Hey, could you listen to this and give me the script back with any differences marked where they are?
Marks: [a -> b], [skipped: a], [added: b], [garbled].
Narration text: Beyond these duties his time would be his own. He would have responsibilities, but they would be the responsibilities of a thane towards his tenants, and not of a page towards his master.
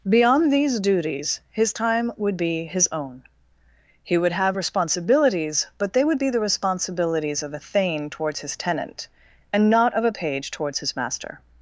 Beyond these duties his time would be his own. He would have responsibilities, but they would be the responsibilities of a thane towards his [tenants, -> tenant] and not of a page towards his master.